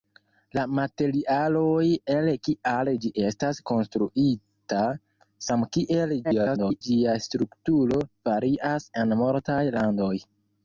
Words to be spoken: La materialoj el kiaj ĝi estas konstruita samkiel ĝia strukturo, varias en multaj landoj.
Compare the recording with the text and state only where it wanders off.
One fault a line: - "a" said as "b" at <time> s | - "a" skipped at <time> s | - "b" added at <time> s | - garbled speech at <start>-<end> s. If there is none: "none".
- garbled speech at 6.2-6.8 s